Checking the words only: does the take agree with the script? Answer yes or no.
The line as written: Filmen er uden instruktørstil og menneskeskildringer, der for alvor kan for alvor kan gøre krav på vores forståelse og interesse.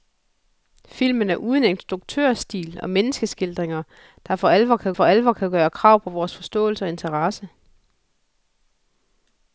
yes